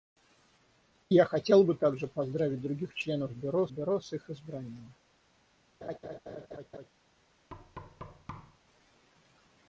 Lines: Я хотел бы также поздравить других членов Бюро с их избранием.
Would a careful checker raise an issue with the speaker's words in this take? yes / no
yes